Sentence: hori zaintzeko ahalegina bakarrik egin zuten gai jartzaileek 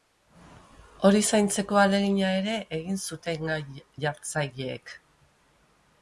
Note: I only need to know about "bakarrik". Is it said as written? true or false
false